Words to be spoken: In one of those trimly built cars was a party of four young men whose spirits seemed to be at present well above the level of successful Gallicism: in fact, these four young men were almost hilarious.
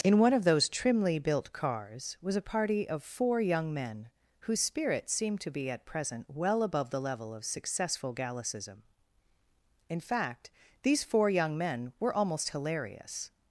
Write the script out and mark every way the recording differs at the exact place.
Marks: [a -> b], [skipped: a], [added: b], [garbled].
In one of those trimly built cars was a party of four young men whose spirits seemed to be at present well above the level of successful Gallicism: in fact, these four young men were almost hilarious.